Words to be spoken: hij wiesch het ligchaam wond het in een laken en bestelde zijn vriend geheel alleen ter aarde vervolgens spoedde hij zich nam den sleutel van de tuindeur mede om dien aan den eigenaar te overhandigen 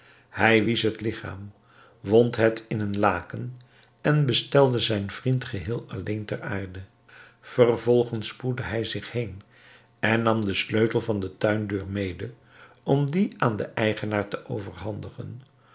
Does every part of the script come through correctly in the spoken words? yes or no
no